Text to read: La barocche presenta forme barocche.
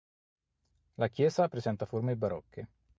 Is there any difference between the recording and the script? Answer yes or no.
yes